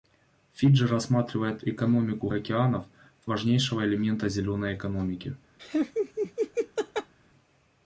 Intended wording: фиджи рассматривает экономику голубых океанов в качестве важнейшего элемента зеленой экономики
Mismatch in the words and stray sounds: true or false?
true